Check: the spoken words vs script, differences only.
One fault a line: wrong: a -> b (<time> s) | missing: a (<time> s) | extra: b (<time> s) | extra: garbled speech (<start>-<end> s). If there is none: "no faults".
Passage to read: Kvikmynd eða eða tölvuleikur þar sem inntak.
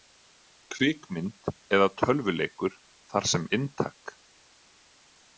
missing: eða (1.9 s)